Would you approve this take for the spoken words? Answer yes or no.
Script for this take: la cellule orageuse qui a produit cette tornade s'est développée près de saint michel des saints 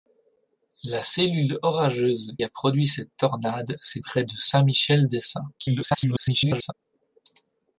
no